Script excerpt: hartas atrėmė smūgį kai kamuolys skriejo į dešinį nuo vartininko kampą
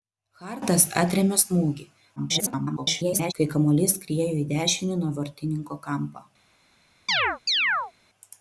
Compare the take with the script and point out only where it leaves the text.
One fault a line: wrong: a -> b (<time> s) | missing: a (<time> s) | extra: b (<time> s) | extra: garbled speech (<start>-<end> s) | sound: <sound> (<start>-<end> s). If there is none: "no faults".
extra: garbled speech (2.2-3.3 s)
sound: chirp (7.1-7.9 s)